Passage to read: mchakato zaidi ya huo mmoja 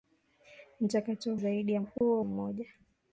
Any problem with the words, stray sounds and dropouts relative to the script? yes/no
yes